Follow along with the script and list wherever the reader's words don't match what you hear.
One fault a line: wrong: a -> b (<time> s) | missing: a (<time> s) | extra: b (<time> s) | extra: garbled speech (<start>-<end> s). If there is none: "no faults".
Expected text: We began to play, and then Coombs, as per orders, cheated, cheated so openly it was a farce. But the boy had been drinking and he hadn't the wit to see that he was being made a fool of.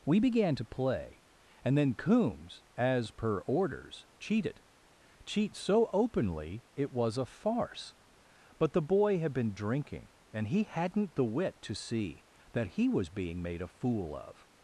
wrong: cheated -> cheat (5.2 s)